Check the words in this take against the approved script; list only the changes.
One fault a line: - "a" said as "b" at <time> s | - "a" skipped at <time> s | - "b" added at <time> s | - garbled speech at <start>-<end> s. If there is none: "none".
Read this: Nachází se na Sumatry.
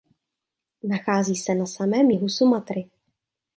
- "samém jihu" added at 1.6 s